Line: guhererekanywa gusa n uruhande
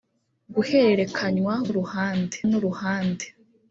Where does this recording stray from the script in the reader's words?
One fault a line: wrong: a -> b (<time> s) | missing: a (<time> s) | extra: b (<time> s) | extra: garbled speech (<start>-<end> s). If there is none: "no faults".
wrong: gusa -> uruhande (1.7 s)